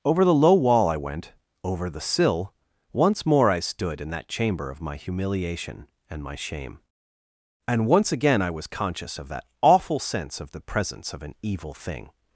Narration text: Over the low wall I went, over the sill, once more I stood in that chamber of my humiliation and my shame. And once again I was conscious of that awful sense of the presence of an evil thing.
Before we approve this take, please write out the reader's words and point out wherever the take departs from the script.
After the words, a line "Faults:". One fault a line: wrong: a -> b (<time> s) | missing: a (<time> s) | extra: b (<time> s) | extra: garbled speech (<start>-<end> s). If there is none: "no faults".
Over the low wall I went, over the sill, once more I stood in that chamber of my humiliation and my shame. And once again I was conscious of that awful sense of the presence of an evil thing.
Faults:
no faults